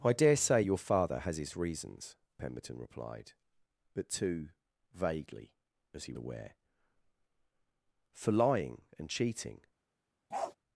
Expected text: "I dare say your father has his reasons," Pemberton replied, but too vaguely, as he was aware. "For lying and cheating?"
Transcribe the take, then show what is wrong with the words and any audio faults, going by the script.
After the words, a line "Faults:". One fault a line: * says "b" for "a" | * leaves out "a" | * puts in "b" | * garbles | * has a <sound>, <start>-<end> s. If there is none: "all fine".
"I dare say your father has his reasons," Pemberton replied, but too vaguely, as he aware. "For lying and cheating?"
Faults:
* leaves out "was"
* has a bark, 10.3-10.6 s